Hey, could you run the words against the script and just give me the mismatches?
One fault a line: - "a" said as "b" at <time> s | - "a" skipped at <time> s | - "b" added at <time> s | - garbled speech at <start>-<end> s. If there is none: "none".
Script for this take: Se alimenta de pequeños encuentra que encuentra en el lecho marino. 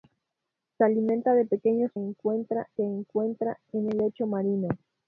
none